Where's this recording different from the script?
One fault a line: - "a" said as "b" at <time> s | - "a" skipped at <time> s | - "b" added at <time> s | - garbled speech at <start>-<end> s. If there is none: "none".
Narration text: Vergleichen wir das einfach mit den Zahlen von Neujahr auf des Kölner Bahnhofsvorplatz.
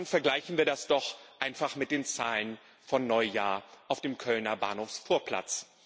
- "doch" added at 0.9 s
- "des" said as "dem" at 4.0 s